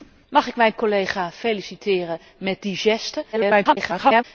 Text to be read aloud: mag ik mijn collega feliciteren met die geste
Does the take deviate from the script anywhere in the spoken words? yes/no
yes